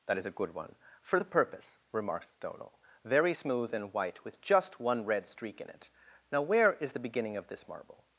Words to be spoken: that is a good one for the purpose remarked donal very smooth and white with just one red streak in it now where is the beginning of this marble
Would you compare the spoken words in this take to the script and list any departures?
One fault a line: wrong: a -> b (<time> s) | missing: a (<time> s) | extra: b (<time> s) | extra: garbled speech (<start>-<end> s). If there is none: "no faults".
no faults